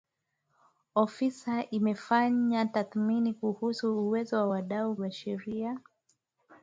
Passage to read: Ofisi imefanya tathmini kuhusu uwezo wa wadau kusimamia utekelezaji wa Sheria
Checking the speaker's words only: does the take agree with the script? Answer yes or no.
no